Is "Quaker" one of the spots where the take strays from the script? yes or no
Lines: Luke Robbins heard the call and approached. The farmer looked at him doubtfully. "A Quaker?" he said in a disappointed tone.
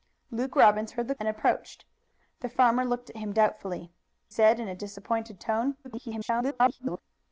yes